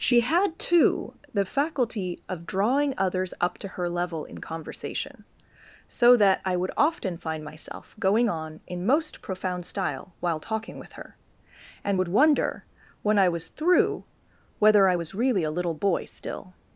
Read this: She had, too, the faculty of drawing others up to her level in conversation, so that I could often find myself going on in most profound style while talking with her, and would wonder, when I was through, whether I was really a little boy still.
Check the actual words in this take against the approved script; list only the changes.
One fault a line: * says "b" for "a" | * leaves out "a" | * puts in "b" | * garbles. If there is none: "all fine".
* says "would" for "could"